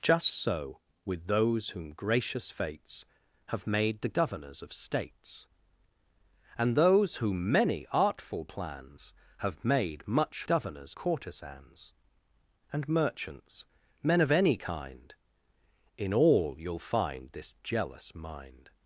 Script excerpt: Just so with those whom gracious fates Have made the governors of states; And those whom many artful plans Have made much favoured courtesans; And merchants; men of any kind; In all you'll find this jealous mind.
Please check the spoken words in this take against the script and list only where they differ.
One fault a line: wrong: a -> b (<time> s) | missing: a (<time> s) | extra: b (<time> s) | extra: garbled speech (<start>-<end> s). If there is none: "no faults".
wrong: favoured -> governors (10.4 s)